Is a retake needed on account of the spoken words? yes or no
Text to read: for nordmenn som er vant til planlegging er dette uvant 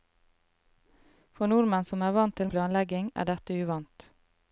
no